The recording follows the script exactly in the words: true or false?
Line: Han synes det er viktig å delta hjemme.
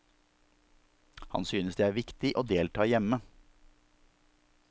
true